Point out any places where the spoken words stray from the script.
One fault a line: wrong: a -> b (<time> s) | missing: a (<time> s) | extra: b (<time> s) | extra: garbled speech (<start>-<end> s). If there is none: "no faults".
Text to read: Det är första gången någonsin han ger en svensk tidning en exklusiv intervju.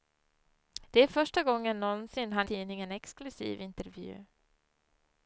missing: ger en svensk (2.5 s)